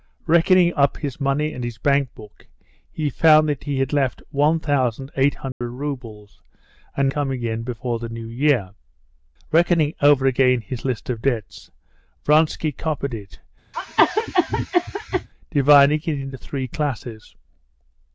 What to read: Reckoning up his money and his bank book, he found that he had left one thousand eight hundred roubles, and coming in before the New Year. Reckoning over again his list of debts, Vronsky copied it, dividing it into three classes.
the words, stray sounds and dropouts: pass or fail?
fail